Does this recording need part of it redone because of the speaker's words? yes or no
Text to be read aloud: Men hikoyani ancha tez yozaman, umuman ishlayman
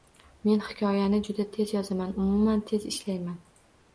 yes